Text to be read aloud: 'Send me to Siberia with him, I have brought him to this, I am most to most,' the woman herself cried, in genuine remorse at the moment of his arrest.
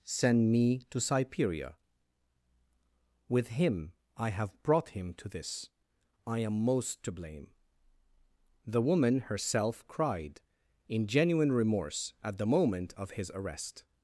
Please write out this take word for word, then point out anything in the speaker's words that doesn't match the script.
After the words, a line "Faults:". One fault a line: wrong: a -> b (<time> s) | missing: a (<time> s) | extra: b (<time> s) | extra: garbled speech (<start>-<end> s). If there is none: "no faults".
'Send me to Siberia with him, I have brought him to this, I am most to blame,' the woman herself cried, in genuine remorse at the moment of his arrest.
Faults:
wrong: most -> blame (7.1 s)